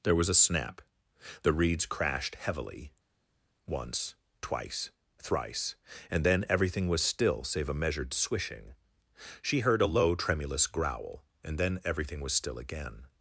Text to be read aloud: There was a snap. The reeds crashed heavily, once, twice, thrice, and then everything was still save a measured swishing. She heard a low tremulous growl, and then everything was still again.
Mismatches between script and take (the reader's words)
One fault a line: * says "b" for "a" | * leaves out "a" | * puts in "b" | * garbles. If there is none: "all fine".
all fine